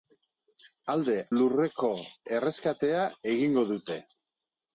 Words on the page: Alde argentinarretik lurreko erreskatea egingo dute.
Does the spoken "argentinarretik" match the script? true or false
false